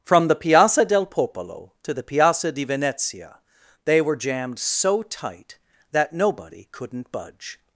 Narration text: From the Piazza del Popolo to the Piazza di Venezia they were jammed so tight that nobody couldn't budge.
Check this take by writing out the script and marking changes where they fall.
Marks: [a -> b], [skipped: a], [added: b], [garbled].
From the Piazza del Popolo to the Piazza di Venezia they were jammed so tight that nobody couldn't budge.